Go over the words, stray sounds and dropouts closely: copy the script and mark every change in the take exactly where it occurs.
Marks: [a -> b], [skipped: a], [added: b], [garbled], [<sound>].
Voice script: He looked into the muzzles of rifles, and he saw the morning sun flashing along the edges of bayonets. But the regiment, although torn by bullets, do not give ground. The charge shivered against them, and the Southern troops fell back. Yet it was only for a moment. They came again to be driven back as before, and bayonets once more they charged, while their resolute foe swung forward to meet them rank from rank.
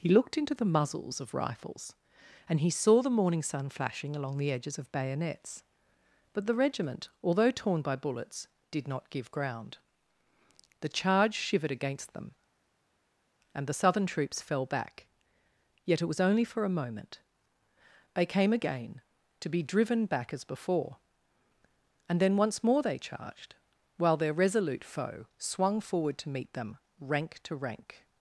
He looked into the muzzles of rifles, and he saw the morning sun flashing along the edges of bayonets. But the regiment, although torn by bullets, [do -> did] not give ground. The charge shivered against them, and the Southern troops fell back. Yet it was only for a moment. They came again to be driven back as before, and [bayonets -> then] once more they charged, while their resolute foe swung forward to meet them rank [from -> to] rank.